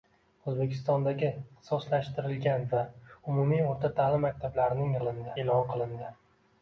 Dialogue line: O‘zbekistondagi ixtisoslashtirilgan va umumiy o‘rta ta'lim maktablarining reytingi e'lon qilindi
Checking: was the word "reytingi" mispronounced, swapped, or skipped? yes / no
yes